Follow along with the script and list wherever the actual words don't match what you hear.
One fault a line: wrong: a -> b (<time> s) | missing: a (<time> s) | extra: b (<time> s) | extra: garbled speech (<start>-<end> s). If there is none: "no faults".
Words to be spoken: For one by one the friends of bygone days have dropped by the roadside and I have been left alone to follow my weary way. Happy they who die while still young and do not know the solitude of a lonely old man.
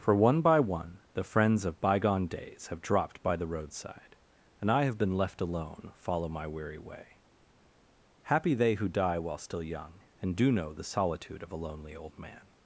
missing: to (5.9 s)
missing: not (10.5 s)